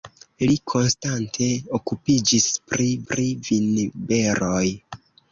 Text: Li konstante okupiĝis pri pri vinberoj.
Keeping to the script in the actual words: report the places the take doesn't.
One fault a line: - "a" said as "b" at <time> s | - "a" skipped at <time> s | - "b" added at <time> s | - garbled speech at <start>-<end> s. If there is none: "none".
none